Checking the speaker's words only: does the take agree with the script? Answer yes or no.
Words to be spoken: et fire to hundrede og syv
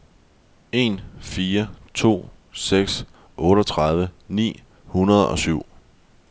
no